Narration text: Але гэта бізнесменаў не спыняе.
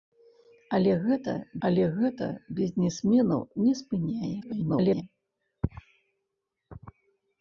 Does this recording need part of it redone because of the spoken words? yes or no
yes